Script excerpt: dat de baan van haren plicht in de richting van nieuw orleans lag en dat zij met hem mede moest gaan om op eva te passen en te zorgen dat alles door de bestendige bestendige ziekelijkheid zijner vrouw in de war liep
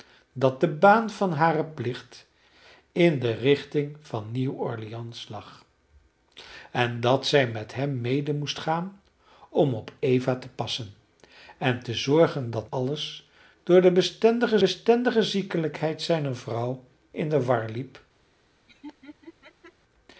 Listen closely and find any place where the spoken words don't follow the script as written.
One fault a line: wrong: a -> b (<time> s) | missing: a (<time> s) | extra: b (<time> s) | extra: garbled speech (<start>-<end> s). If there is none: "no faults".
no faults